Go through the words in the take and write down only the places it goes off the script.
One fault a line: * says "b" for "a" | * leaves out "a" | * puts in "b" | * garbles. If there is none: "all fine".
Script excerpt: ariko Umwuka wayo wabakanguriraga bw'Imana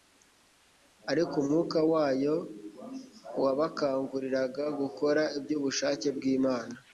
* puts in "gukora iby'ubushake"